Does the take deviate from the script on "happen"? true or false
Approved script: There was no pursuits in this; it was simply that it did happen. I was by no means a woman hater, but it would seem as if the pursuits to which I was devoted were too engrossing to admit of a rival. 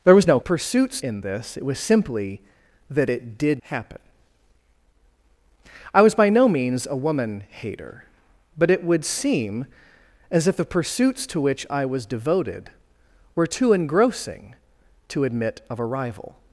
false